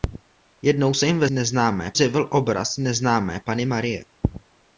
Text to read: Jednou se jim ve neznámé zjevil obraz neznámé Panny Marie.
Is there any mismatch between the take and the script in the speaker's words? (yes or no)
no